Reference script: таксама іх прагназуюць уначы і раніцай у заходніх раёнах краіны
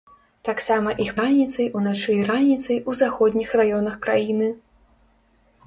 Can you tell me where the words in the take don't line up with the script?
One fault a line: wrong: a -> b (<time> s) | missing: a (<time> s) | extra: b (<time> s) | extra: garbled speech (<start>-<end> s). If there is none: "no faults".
wrong: прагназуюць -> раніцай (1.2 s)